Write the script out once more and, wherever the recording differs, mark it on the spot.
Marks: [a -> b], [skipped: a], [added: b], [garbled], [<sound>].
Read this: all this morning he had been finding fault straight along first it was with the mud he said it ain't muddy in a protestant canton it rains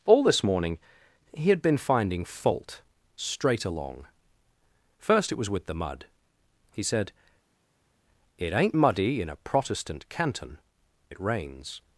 all this morning he had been finding fault straight along first it was with the mud he said it ain't muddy in a protestant canton it rains